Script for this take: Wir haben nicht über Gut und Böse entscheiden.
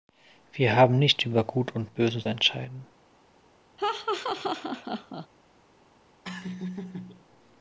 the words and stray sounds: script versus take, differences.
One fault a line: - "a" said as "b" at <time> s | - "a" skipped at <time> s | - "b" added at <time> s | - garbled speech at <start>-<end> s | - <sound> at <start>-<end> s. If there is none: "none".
- laugh at 3.8-5.3 s
- laugh at 6.2-7.3 s